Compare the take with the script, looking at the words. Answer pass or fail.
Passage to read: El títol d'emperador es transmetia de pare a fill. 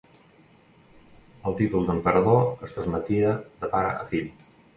pass